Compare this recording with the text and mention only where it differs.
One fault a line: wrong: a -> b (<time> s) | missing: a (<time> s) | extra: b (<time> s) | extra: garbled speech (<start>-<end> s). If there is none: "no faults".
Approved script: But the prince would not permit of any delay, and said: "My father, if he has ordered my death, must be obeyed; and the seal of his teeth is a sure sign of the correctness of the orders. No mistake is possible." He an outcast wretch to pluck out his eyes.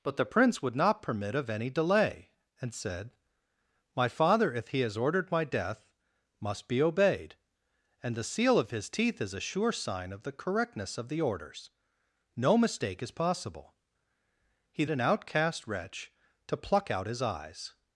no faults